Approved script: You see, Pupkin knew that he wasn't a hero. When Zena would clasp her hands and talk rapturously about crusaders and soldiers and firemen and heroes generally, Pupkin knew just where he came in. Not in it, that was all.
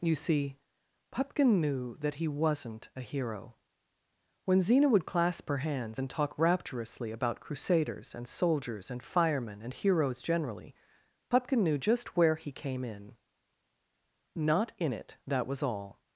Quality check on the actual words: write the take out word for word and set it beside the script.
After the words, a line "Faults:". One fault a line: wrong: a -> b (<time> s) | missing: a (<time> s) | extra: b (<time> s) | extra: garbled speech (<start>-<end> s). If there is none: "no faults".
You see, Pupkin knew that he wasn't a hero. When Zena would clasp her hands and talk rapturously about crusaders and soldiers and firemen and heroes generally, Pupkin knew just where he came in. Not in it, that was all.
Faults:
no faults